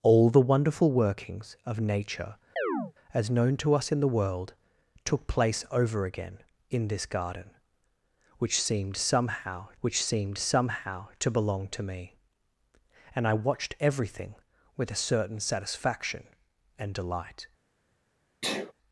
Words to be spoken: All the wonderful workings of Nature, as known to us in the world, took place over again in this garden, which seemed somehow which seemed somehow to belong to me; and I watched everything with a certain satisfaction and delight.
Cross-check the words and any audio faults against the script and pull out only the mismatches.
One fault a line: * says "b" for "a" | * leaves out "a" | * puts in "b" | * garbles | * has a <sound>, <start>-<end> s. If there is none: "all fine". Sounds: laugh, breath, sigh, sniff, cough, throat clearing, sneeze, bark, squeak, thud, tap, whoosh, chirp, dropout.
* has a chirp, 2.6-2.9 s
* has a sneeze, 18.4-18.7 s